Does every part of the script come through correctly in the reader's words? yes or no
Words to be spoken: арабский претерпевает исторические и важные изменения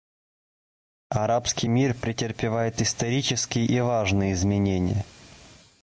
no